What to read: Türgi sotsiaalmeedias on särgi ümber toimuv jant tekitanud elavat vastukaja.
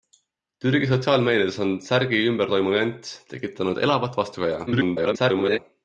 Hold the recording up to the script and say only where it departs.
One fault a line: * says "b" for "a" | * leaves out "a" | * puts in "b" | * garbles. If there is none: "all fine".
* garbles